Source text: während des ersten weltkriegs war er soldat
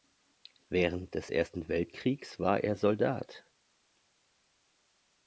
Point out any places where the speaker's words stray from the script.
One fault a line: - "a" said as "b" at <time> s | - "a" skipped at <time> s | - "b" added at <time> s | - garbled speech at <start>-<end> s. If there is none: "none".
none